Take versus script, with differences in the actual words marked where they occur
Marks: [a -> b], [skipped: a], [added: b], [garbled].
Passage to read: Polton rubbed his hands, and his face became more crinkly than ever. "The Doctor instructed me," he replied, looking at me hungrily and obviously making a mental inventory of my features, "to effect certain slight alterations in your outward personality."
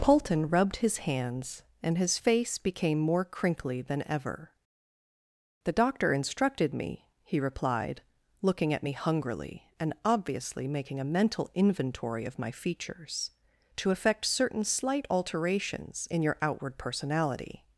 Polton rubbed his hands, and his face became more crinkly than ever. "The Doctor instructed me," he replied, looking at me hungrily and obviously making a mental inventory of my features, "to effect certain slight alterations in your outward personality."